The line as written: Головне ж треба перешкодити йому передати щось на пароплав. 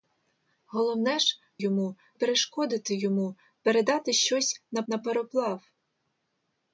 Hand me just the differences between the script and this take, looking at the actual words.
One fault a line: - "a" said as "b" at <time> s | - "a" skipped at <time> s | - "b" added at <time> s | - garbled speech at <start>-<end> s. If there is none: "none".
- "треба" said as "йому" at 1.6 s
- "на" added at 4.9 s